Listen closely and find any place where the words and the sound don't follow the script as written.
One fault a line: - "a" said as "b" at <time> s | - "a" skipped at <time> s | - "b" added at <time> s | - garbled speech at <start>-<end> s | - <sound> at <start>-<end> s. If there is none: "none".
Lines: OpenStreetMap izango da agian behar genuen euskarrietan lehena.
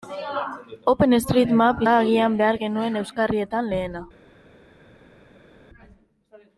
- "izango" skipped at 1.8 s